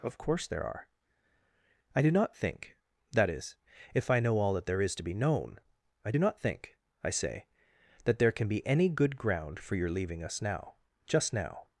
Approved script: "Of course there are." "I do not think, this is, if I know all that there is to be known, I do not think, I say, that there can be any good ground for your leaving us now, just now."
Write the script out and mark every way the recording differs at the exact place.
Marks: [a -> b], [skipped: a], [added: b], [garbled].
"Of course there are." "I do not think, [this -> that] is, if I know all that there is to be known, I do not think, I say, that there can be any good ground for your leaving us now, just now."